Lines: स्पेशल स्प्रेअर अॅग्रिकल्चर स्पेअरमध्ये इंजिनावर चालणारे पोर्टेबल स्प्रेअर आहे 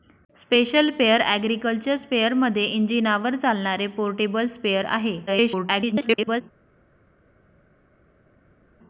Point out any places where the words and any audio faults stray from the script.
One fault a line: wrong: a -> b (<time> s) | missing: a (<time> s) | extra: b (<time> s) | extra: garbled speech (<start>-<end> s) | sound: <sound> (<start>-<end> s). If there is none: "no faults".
extra: garbled speech (5.3-6.4 s)